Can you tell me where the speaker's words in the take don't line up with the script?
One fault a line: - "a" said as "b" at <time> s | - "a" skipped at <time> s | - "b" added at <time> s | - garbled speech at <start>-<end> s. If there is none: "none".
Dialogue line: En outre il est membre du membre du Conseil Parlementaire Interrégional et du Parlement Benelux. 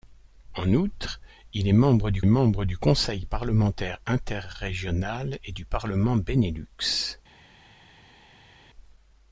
none